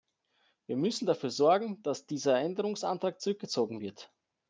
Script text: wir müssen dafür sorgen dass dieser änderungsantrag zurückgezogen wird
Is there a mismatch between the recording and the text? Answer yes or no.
no